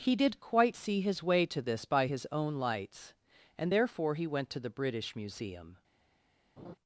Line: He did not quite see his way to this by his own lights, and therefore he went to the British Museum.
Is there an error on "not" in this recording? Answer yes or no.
yes